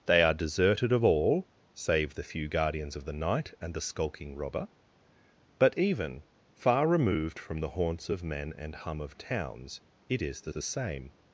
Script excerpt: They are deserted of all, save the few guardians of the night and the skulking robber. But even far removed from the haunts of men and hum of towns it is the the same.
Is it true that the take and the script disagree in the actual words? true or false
false